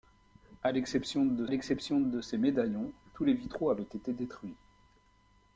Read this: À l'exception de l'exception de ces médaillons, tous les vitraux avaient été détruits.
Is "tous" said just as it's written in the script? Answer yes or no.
yes